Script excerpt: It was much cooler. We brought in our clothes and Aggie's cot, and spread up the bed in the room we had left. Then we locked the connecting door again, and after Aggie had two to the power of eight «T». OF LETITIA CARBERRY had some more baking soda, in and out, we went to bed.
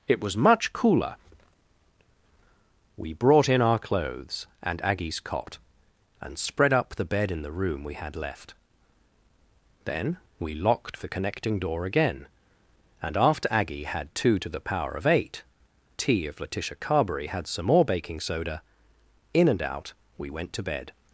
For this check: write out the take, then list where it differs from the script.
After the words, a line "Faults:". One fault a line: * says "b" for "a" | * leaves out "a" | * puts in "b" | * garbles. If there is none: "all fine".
It was much cooler. We brought in our clothes and Aggie's cot, and spread up the bed in the room we had left. Then we locked the connecting door again, and after Aggie had two to the power of eight «T». OF LETITIA CARBERRY had some more baking soda, in and out, we went to bed.
Faults:
all fine